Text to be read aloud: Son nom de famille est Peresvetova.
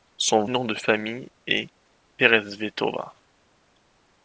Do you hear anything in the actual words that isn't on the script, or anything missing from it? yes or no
no